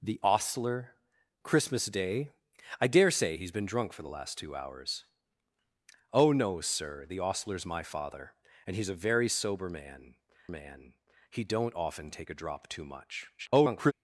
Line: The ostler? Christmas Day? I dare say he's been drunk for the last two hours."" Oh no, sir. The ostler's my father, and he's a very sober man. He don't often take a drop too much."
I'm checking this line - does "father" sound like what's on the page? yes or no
yes